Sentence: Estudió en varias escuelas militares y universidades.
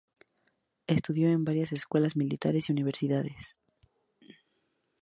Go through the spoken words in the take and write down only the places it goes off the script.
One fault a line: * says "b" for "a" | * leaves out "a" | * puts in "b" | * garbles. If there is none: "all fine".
all fine